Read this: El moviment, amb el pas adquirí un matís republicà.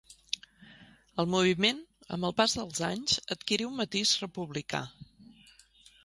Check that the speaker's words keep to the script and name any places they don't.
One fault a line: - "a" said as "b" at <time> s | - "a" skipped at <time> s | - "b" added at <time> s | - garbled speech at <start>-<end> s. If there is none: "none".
- "dels anys" added at 2.6 s